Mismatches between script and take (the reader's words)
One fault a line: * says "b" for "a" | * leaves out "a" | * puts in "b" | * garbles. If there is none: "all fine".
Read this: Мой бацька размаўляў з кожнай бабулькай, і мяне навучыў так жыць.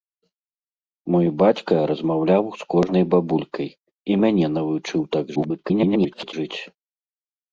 * garbles